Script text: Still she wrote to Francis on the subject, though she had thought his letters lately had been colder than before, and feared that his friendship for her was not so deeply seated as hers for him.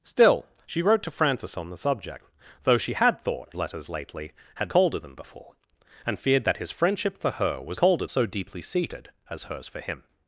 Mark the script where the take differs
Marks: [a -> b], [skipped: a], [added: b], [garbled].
Still she wrote to Francis on the subject, though she had thought [skipped: his] letters lately had [skipped: been] colder than before, and feared that his friendship for her was [not -> colder] so deeply seated as hers for him.